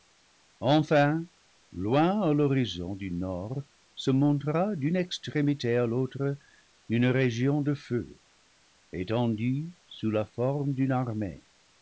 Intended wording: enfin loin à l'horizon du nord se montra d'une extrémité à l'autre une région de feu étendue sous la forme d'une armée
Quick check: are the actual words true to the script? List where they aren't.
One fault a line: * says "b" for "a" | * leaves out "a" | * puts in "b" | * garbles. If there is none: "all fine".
all fine